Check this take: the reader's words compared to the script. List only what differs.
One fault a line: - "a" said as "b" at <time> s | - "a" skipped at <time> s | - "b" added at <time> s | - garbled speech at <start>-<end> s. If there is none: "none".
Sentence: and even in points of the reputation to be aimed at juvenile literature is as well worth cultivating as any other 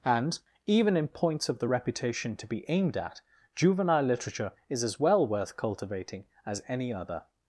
none